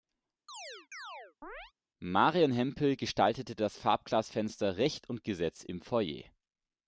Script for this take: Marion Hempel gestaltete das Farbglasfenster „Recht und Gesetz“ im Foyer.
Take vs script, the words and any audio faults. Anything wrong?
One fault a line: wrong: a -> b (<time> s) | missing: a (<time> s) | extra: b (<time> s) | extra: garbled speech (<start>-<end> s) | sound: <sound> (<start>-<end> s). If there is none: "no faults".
sound: chirp (0.5-1.7 s)